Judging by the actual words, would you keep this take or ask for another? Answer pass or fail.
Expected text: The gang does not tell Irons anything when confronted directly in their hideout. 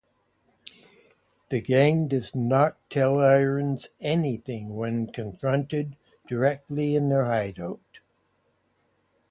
pass